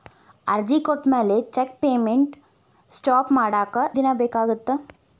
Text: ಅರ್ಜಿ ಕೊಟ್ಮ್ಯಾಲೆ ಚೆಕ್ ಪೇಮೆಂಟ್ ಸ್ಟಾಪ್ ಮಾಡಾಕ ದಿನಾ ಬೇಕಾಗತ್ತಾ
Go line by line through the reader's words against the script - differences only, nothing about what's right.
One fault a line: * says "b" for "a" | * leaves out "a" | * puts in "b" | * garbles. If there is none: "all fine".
all fine